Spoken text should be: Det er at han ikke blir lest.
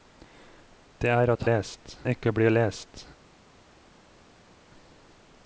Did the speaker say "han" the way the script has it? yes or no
no